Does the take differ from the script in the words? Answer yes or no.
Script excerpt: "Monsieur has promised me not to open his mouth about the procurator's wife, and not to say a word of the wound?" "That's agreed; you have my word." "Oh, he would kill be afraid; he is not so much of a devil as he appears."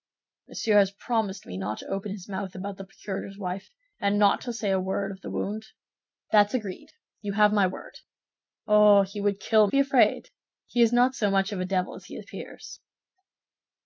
no